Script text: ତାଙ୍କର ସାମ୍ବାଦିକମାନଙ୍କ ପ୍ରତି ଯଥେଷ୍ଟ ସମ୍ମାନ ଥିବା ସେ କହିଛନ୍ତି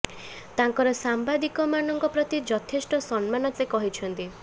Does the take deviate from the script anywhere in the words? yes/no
yes